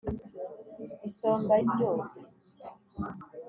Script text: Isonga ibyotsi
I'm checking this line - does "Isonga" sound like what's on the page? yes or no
yes